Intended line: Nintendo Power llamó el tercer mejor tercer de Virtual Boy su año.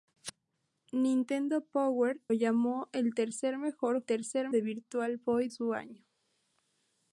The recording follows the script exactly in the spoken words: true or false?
true